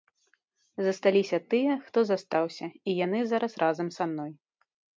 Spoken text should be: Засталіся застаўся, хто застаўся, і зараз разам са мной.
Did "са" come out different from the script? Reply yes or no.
no